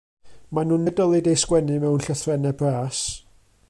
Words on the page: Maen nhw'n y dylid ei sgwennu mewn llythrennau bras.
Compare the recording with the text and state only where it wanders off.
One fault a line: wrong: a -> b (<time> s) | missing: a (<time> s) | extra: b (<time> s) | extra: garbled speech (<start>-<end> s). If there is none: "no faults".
no faults